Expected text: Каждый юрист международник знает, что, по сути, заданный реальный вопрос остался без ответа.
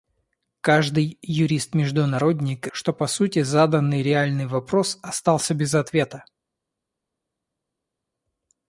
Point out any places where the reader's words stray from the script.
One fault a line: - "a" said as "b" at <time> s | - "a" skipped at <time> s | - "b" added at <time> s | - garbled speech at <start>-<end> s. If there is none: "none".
- "знает" skipped at 2.6 s